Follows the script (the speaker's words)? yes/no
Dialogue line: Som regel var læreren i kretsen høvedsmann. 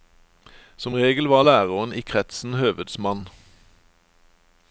yes